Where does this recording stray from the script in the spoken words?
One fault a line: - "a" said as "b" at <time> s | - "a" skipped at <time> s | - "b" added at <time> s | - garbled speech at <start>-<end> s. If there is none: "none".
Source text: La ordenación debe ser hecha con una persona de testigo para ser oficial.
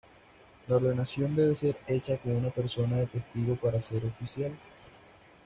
none